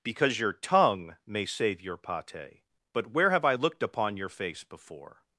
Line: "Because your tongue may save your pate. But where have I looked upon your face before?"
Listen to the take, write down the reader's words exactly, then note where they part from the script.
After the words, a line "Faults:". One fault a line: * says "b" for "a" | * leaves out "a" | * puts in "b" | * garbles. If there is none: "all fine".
"Because your tongue may save your pate. But where have I looked upon your face before?"
Faults:
all fine